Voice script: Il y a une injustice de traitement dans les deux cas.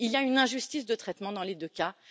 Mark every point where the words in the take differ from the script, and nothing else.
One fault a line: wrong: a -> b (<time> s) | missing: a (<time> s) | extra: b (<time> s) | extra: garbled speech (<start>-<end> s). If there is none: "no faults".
no faults